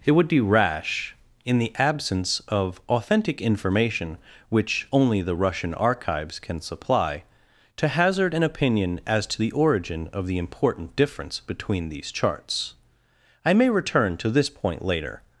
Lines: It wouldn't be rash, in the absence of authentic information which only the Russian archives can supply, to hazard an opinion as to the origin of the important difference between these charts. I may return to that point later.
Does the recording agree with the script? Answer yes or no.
no